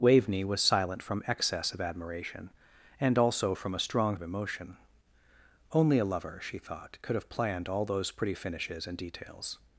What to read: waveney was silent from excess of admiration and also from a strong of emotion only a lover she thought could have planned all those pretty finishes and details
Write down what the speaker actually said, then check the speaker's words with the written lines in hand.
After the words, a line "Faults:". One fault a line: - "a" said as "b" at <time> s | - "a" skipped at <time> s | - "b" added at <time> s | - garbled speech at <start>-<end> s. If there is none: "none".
waveney was silent from excess of admiration and also from a strong of emotion only a lover she thought could have planned all those pretty finishes and details
Faults:
none